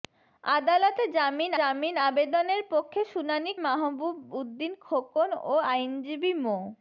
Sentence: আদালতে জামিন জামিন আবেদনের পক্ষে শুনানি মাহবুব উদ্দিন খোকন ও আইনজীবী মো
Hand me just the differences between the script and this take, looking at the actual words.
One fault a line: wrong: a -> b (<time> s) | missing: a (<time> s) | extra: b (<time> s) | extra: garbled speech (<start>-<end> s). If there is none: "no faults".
no faults